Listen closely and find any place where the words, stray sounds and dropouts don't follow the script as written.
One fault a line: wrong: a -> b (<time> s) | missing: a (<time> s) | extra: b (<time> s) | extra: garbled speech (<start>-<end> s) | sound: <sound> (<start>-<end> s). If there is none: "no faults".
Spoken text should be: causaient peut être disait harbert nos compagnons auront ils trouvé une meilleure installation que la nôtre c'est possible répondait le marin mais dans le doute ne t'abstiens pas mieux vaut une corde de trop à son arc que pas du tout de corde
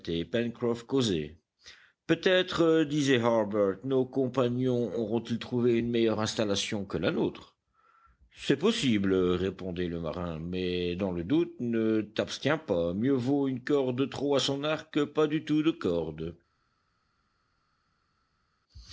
no faults